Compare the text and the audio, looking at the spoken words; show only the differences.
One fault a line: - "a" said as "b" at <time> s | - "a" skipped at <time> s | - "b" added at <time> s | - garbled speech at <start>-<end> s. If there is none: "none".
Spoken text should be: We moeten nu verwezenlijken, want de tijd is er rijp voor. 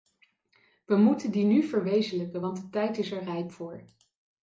- "die" added at 1.3 s